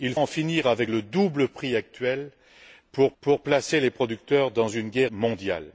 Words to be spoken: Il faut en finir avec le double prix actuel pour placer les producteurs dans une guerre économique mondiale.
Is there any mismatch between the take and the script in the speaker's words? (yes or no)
yes